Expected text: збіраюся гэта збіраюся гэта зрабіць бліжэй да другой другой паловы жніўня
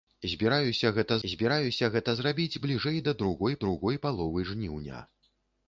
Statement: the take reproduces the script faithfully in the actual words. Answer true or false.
true